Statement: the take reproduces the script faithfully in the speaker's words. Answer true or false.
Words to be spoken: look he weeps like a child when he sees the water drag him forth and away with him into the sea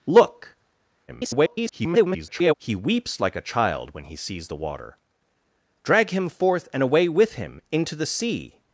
false